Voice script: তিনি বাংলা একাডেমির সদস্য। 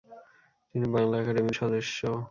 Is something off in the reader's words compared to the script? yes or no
no